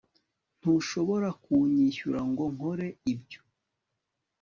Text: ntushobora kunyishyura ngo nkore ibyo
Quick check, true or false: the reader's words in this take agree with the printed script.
true